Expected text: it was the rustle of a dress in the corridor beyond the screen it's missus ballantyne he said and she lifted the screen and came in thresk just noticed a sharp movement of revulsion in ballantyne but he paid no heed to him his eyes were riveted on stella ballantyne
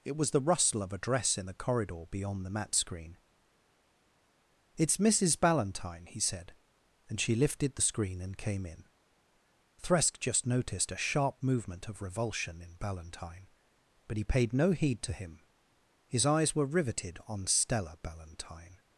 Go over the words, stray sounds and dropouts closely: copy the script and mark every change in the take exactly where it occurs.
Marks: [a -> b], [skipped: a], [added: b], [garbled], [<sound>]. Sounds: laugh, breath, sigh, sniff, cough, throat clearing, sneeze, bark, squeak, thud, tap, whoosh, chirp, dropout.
it was the rustle of a dress in the corridor beyond the [added: mat] screen it's missus ballantyne he said and she lifted the screen and came in thresk just noticed a sharp movement of revulsion in ballantyne but he paid no heed to him his eyes were riveted on stella ballantyne